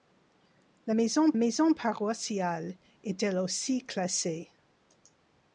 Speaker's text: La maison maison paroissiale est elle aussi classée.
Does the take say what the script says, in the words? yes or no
yes